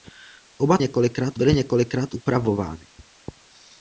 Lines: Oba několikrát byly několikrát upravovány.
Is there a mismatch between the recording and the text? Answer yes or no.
no